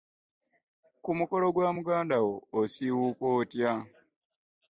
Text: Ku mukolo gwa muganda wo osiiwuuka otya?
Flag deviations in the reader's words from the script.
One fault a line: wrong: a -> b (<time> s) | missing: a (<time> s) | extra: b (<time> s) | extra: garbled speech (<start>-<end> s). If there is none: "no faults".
no faults